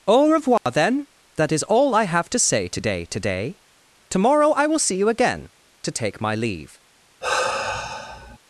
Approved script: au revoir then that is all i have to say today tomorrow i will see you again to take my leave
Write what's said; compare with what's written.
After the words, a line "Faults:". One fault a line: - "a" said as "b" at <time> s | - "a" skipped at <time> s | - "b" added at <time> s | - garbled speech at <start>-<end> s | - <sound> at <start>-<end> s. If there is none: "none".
au revoir then that is all i have to say today today tomorrow i will see you again to take my leave
Faults:
- dropout at 0.6-0.7 s
- "today" added at 3.0 s
- sigh at 7.2-8.4 s